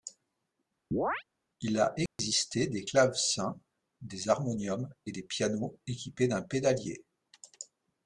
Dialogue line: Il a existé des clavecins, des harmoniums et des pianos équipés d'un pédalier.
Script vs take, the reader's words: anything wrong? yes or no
no